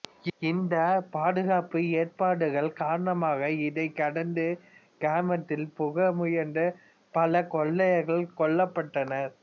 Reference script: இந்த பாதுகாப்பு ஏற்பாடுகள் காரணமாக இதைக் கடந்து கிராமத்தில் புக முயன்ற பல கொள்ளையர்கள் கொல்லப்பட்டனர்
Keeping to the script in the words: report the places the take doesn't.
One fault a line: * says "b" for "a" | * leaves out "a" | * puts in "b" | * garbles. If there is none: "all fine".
all fine